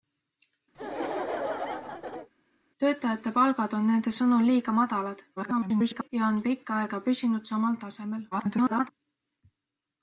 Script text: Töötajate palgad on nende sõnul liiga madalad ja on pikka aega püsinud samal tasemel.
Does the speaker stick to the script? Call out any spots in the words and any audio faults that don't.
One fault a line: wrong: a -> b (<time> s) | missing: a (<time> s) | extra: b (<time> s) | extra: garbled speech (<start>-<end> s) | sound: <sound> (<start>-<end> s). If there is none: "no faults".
sound: laugh (0.7-2.3 s)
extra: garbled speech (5.4-6.1 s)
extra: garbled speech (8.3-8.9 s)